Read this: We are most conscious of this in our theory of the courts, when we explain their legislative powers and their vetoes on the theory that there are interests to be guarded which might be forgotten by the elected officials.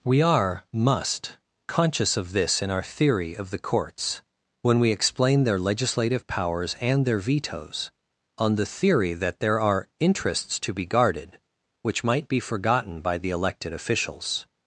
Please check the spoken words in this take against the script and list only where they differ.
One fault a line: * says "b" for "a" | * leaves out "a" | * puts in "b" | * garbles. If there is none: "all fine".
* says "must" for "most"